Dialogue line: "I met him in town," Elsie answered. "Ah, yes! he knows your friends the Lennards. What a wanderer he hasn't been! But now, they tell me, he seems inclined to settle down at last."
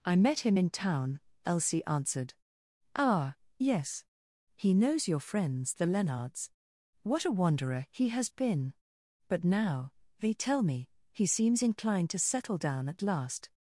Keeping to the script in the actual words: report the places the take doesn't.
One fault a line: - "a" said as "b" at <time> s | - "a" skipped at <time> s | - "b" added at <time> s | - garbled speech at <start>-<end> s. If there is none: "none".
- "hasn't" said as "has" at 8.1 s